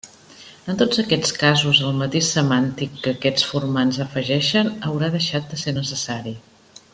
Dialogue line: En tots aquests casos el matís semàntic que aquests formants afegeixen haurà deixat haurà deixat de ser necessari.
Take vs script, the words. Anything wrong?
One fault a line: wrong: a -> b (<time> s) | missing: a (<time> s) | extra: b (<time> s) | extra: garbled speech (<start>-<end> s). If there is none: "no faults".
missing: haurà deixat (5.5 s)